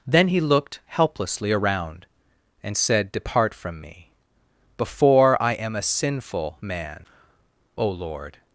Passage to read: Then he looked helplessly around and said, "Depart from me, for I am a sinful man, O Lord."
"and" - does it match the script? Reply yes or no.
yes